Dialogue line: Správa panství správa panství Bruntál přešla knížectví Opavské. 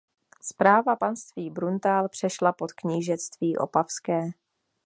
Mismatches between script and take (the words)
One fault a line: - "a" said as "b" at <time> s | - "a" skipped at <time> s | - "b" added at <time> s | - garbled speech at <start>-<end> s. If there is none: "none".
- "správa panství" skipped at 1.5 s
- "pod" added at 2.5 s